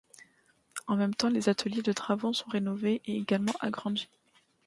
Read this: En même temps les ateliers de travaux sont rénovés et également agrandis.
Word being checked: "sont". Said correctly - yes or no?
yes